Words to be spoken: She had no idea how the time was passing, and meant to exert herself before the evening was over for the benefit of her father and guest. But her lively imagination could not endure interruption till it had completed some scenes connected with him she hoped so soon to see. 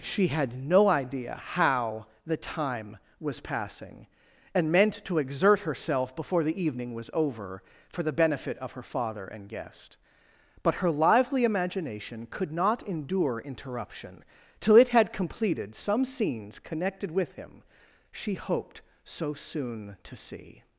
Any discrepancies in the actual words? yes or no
no